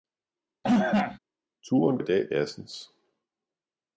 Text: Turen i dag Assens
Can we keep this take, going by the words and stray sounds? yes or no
no